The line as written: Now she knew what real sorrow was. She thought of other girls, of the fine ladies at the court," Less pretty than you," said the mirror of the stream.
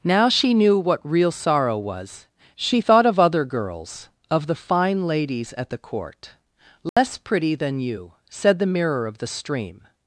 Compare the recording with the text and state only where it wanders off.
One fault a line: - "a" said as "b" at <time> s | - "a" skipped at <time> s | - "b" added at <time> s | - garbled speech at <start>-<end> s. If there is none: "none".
none